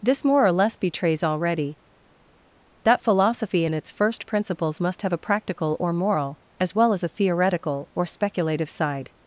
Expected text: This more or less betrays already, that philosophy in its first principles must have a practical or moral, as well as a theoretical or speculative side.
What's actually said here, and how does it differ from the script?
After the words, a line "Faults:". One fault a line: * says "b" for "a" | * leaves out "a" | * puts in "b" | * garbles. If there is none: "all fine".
This more or less betrays already, that philosophy in its first principles must have a practical or moral, as well as a theoretical or speculative side.
Faults:
all fine